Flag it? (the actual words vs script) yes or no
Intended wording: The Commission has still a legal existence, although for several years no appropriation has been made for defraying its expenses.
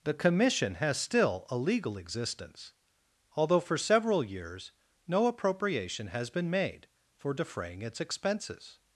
no